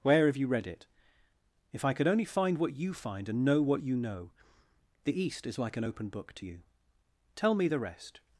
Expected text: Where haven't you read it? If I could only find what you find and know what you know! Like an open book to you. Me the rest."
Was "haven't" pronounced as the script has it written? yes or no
no